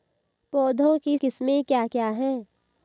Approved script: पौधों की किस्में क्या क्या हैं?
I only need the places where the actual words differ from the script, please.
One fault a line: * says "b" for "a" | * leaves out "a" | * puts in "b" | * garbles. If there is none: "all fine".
all fine